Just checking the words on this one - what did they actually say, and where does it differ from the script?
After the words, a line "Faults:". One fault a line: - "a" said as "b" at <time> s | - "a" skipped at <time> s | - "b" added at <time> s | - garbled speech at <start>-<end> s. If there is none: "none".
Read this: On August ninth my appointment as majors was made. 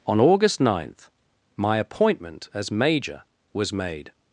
On August ninth my appointment as major was made.
Faults:
- "majors" said as "major" at 2.7 s